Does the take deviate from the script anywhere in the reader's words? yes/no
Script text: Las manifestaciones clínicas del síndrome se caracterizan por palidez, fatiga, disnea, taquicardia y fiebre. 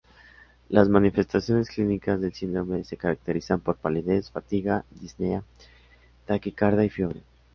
no